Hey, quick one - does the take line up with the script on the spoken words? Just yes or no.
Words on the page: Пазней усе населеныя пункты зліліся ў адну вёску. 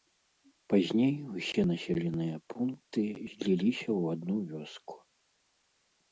yes